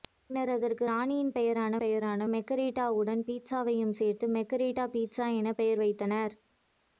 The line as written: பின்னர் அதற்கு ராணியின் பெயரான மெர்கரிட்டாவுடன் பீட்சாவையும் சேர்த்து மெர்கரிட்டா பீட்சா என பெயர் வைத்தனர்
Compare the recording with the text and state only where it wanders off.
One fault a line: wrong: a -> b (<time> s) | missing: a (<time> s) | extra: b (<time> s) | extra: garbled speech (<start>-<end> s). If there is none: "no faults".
extra: பெயரான (1.8 s)